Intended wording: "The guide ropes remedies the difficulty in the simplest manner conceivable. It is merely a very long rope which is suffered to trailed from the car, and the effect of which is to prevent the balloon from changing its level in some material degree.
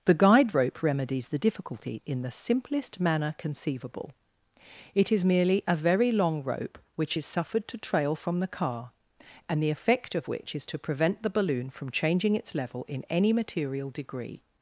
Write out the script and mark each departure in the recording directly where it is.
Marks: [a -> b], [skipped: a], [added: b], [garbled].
"The guide [ropes -> rope] remedies the difficulty in the simplest manner conceivable. It is merely a very long rope which is suffered to [trailed -> trail] from the car, and the effect of which is to prevent the balloon from changing its level in [some -> any] material degree.